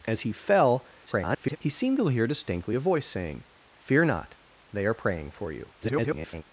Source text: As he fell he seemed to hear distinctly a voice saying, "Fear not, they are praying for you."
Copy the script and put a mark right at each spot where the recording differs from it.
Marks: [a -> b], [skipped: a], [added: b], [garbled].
As he fell [garbled] he seemed to hear distinctly a voice saying, "Fear not, they are praying for you." [garbled]